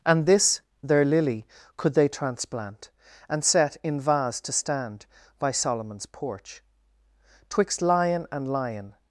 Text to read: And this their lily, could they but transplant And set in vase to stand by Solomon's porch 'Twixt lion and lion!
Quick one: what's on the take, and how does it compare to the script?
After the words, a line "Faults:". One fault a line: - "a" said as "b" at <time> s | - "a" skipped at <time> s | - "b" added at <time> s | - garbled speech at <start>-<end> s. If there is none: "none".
And this their lily, could they transplant And set in vase to stand by Solomon's porch 'Twixt lion and lion!
Faults:
- "but" skipped at 2.1 s